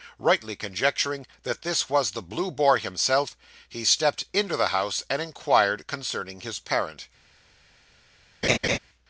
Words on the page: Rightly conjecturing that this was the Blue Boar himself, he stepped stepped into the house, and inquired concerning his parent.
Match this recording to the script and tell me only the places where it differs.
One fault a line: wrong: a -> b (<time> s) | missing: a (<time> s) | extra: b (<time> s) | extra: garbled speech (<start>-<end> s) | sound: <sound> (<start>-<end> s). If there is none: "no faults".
missing: stepped (4.2 s)
sound: laugh (8.4-8.8 s)